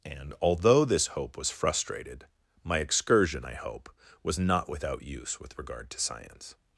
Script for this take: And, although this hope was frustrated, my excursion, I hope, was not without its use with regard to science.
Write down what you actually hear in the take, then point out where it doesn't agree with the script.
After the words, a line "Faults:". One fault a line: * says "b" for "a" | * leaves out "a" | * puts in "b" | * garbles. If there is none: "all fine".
And, although this hope was frustrated, my excursion, I hope, was not without use with regard to science.
Faults:
* leaves out "its"